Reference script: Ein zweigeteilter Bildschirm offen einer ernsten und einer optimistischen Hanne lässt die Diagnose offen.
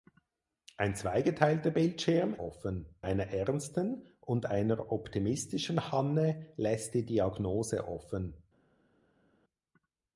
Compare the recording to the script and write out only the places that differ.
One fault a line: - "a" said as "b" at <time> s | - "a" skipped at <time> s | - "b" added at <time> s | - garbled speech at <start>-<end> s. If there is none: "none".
none